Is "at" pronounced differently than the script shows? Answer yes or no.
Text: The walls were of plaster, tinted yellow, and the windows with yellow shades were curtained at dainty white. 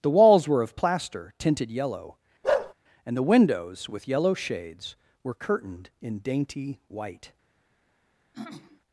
yes